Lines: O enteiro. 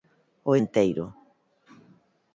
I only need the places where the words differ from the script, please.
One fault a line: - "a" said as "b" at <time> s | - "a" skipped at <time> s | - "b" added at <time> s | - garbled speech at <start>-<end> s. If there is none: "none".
none